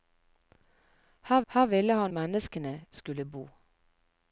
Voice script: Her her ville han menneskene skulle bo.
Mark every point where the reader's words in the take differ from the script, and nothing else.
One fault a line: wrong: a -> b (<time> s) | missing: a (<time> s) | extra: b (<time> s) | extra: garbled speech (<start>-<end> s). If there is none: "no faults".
no faults